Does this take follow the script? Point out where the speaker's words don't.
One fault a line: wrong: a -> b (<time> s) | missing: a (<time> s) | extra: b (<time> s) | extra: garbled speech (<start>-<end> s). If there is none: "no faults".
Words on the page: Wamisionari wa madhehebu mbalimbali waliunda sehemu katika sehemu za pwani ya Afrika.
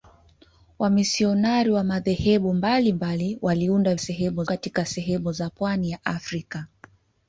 no faults